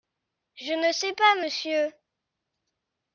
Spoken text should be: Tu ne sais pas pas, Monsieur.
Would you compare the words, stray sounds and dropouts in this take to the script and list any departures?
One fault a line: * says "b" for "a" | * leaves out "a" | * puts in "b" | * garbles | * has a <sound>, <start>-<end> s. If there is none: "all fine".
* says "Je" for "Tu"
* leaves out "pas"